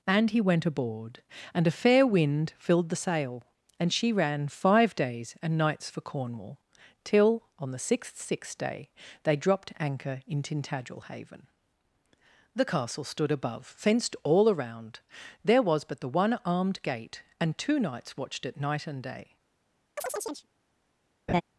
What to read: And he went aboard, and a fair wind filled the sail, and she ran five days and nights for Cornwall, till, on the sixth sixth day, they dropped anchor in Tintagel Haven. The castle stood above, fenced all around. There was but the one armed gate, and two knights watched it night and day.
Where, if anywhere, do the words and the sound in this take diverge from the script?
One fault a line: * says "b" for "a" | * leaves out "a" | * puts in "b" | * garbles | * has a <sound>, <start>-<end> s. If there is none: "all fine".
* has a chirp, 20.0-20.5 s
* has a laugh, 21.3-21.4 s